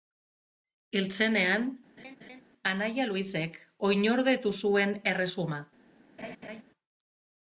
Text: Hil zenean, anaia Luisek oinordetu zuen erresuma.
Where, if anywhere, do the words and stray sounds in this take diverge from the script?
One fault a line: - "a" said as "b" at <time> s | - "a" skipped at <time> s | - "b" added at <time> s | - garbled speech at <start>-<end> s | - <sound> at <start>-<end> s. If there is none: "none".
- laugh at 2.0-2.4 s
- laugh at 6.2-6.6 s